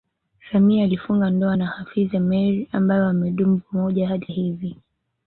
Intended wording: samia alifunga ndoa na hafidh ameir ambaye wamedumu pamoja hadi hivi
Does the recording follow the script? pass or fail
pass